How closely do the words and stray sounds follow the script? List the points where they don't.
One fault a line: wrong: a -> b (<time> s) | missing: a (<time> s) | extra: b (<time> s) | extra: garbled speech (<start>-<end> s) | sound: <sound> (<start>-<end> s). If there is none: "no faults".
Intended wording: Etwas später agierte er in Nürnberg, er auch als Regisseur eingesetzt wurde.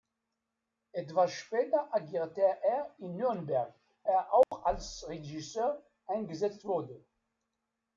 sound: dropout (4.4-4.5 s)